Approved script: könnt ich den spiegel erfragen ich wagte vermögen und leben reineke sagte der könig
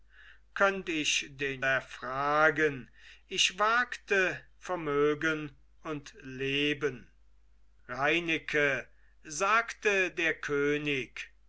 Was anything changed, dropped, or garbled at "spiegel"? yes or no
yes